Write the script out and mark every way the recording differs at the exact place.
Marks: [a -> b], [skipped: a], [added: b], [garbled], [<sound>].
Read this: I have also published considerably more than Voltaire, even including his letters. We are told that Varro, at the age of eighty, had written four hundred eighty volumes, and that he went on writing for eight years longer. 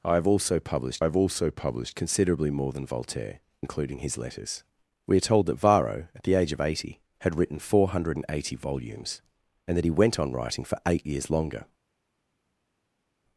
I have also published [added: have also published] considerably more than Voltaire, [skipped: even] including his letters. We are told that Varro, at the age of eighty, had written four hundred eighty volumes, and that he went on writing for eight years longer.